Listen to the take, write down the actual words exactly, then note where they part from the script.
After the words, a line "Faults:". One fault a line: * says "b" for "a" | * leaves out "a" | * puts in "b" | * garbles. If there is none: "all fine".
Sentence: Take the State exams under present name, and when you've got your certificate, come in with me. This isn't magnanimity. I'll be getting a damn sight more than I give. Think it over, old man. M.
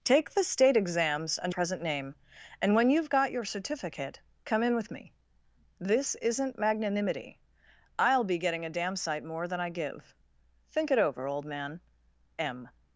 Take the State exams under present name, and when you've got your certificate, come in with me. This isn't magnanimity. I'll be getting a damn sight more than I give. Think it over, old man. M.
Faults:
all fine